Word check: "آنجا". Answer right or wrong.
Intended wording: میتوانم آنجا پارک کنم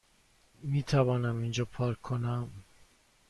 wrong